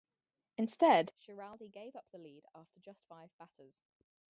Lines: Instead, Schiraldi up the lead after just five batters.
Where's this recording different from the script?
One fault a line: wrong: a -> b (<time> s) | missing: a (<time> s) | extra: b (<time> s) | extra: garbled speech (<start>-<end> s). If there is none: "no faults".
extra: gave (1.7 s)